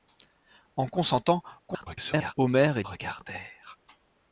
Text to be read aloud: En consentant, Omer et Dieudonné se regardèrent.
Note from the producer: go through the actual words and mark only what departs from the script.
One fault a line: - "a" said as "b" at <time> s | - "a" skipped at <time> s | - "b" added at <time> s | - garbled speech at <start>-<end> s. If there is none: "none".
- garbled speech at 1.7-2.3 s
- "Dieudonné se" skipped at 2.8 s